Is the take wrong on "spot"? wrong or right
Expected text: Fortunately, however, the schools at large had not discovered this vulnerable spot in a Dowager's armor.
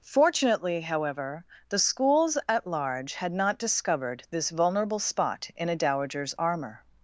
right